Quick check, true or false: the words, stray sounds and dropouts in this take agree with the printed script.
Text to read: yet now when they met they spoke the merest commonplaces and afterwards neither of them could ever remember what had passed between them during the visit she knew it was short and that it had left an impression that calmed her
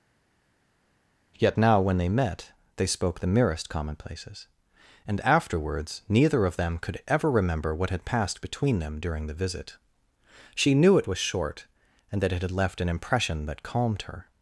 true